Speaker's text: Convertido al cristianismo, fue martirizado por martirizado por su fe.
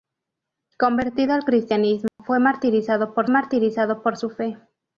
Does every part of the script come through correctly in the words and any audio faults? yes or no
no